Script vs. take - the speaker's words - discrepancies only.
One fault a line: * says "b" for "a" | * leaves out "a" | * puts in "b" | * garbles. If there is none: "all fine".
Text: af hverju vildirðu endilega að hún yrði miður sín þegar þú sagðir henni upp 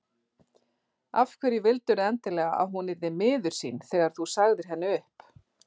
all fine